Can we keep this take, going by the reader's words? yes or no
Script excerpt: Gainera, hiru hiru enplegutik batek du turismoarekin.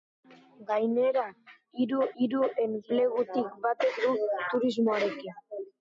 yes